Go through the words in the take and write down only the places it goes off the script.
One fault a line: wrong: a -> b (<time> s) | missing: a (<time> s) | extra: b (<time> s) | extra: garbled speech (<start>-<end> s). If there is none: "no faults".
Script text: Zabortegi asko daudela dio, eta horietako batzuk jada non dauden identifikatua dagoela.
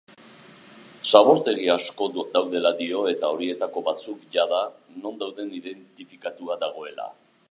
no faults